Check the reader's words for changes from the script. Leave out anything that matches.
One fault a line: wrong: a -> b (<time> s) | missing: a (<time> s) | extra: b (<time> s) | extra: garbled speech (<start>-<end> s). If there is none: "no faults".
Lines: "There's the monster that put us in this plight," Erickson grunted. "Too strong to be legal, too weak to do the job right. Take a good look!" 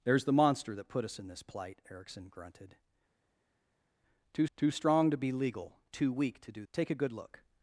extra: too (4.6 s)
missing: the job right (6.6 s)